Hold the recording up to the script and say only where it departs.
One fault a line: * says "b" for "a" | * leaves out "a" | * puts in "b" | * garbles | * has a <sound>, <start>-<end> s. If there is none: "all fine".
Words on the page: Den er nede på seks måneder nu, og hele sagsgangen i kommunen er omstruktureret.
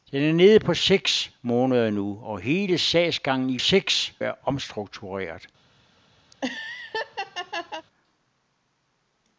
* says "seks" for "kommunen"
* has a laugh, 6.3-7.9 s